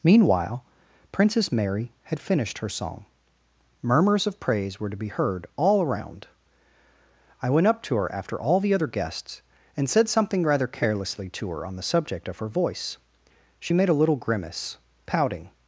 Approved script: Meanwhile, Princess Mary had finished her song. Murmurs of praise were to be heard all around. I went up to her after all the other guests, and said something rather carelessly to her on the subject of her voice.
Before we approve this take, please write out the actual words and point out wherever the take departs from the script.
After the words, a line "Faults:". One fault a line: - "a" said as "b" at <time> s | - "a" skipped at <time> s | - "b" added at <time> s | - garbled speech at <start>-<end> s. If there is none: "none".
Meanwhile, Princess Mary had finished her song. Murmurs of praise were to be heard all around. I went up to her after all the other guests, and said something rather carelessly to her on the subject of her voice. She made a little grimace, pouting
Faults:
- "She made a little grimace pouting" added at 13.6 s